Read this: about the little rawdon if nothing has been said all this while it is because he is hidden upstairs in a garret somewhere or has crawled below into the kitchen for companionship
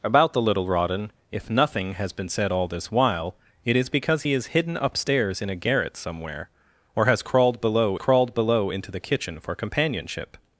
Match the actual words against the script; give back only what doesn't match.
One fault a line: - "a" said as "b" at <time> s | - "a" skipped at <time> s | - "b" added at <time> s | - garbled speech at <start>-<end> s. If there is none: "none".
- "crawled below" added at 8.0 s